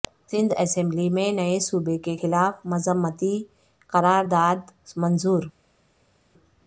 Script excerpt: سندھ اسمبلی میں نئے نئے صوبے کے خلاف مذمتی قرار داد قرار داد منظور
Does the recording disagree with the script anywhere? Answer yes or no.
yes